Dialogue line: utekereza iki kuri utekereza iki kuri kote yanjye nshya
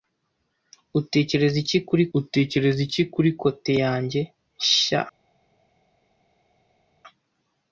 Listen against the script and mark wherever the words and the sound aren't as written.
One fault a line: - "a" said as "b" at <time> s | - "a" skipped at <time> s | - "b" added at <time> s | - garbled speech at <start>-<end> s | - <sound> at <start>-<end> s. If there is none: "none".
none